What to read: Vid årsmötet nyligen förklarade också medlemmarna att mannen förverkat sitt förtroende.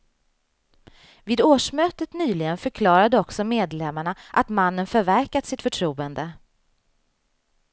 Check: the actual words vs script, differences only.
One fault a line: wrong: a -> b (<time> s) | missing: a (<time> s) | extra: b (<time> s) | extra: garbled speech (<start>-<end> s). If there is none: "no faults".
no faults